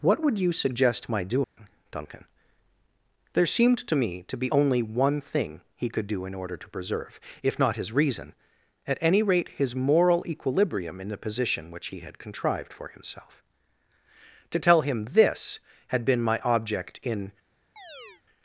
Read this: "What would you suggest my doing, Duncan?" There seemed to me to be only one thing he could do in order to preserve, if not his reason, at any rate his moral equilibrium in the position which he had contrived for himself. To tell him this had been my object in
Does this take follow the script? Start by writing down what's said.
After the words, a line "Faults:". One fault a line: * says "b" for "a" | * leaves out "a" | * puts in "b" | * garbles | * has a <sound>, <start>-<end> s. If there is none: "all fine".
"What would you suggest my doing, Duncan?" There seemed to me to be only one thing he could do in order to preserve, if not his reason, at any rate his moral equilibrium in the position which he had contrived for himself. To tell him this had been my object in
Faults:
* has a dropout, 1.4-1.6 s
* has a chirp, 17.8-18.2 s